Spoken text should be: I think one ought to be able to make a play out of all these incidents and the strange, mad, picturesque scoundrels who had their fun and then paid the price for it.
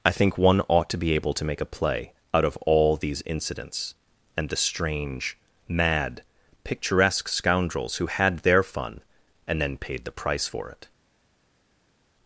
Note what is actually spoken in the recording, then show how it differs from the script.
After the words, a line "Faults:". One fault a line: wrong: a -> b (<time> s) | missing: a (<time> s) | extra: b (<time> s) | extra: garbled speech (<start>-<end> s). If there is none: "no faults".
I think one ought to be able to make a play out of all these incidents and the strange, mad, picturesque scoundrels who had their fun and then paid the price for it.
Faults:
no faults